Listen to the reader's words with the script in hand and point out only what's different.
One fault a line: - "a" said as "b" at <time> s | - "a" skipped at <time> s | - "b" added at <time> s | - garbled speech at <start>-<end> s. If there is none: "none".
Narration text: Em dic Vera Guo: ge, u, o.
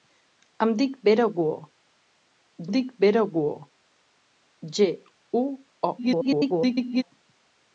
- "dic Vera Guo" added at 2.7 s
- garbled speech at 6.0-7.0 s